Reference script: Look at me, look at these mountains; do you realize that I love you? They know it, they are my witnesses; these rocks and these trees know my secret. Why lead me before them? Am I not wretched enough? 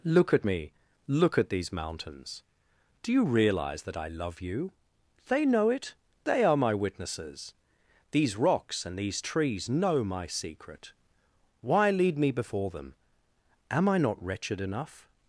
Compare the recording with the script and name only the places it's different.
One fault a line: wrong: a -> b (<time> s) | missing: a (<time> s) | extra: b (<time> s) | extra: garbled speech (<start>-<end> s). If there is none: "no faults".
no faults